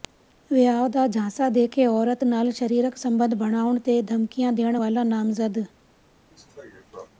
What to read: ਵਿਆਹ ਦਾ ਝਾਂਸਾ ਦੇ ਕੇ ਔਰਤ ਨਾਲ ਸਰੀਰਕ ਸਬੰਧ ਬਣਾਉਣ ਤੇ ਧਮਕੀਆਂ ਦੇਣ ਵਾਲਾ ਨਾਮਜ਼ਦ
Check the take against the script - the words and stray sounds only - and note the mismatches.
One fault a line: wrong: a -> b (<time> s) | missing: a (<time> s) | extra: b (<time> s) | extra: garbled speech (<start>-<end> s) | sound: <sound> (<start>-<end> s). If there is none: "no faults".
sound: cough (6.3-7.1 s)